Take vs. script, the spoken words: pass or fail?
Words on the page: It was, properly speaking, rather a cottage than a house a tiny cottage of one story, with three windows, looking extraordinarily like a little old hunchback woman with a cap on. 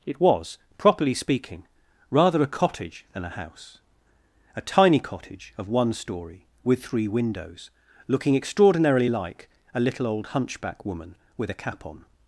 pass